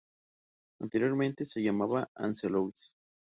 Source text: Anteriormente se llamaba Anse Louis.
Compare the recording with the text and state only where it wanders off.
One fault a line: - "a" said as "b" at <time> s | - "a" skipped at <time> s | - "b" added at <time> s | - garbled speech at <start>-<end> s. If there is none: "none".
none